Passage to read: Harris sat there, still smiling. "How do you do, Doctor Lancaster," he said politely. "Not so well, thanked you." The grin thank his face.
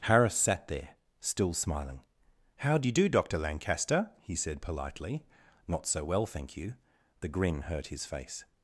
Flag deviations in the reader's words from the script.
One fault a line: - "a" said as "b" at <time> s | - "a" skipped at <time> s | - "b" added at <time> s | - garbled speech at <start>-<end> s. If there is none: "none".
- "thanked" said as "thank" at 6.3 s
- "thank" said as "hurt" at 7.6 s